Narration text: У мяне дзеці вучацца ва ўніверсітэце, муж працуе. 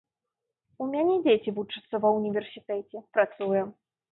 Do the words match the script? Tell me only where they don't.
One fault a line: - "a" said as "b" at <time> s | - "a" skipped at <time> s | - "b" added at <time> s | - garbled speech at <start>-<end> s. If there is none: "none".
- "муж" skipped at 3.1 s